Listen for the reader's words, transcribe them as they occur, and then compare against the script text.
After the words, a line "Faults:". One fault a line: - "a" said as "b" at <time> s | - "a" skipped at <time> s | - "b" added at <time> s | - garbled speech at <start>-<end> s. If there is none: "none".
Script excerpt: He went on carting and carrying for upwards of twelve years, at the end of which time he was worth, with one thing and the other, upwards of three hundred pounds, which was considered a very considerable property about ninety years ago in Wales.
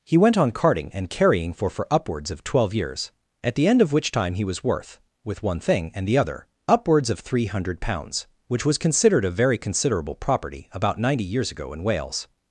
He went on carting and carrying for for upwards of twelve years, at the end of which time he was worth, with one thing and the other, upwards of three hundred pounds, which was considered a very considerable property about ninety years ago in Wales.
Faults:
- "for" added at 1.7 s